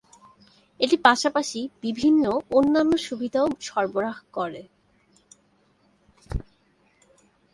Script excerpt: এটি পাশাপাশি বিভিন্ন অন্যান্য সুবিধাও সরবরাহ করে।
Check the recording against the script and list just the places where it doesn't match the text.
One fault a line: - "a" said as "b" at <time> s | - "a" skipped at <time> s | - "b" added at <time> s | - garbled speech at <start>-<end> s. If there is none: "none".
none